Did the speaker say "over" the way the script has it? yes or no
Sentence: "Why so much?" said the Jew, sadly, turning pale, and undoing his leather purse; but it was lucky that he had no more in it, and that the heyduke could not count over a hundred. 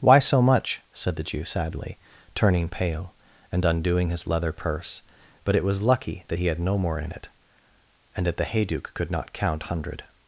no